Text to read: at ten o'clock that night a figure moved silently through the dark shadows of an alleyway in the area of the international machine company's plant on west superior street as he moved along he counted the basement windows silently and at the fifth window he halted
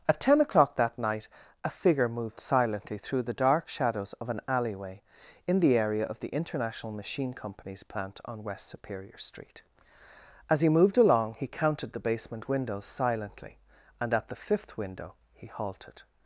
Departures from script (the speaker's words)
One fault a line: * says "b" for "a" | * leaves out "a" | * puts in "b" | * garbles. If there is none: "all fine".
all fine